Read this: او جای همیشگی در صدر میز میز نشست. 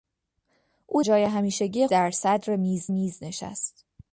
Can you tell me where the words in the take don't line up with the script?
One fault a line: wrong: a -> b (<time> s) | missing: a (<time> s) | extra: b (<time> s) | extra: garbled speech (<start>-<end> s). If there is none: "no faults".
no faults